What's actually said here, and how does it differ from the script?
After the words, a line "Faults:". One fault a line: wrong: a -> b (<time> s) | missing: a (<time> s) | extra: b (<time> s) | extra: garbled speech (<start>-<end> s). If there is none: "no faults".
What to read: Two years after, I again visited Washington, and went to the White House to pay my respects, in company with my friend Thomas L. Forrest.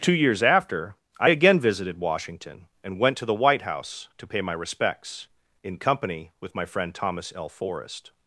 Two years after, I again visited Washington, and went to the White House to pay my respects, in company with my friend Thomas L. Forrest.
Faults:
no faults